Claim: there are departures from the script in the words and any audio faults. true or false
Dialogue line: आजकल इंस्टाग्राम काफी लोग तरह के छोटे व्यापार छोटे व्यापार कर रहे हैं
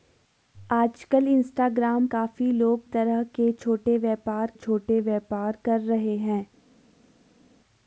false